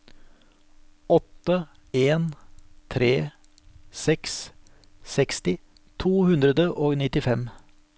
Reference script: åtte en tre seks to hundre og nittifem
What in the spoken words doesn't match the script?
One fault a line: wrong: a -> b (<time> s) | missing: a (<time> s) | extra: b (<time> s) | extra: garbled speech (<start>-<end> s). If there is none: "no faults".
extra: seksti (5.2 s)